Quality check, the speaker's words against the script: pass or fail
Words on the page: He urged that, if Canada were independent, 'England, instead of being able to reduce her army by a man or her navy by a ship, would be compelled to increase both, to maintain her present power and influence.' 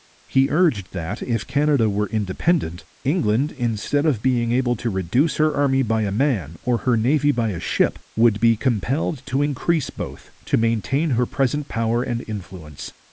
pass